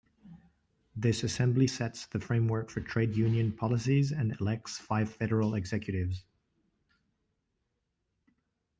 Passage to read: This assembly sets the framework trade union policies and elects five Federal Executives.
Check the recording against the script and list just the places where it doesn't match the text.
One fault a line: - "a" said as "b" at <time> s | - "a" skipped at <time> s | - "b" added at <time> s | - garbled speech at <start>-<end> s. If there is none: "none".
- "for" added at 2.7 s